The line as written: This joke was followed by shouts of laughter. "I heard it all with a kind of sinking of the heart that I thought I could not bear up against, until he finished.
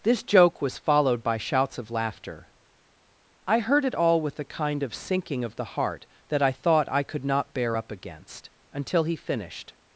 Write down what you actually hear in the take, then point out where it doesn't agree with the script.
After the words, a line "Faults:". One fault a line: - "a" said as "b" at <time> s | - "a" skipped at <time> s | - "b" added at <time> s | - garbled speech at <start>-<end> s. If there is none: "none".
This joke was followed by shouts of laughter. "I heard it all with a kind of sinking of the heart that I thought I could not bear up against, until he finished.
Faults:
none